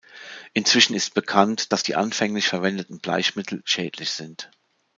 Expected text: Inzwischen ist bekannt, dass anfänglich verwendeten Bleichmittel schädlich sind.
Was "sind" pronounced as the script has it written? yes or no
yes